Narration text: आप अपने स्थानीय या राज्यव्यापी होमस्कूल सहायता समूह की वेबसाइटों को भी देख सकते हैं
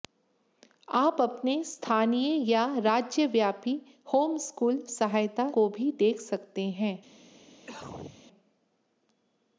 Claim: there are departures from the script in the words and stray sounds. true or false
true